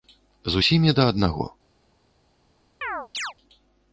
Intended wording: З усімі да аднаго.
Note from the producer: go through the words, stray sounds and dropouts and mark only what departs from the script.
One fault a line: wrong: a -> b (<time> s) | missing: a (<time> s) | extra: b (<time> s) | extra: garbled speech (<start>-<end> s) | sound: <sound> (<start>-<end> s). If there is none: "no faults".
sound: chirp (2.8-3.3 s)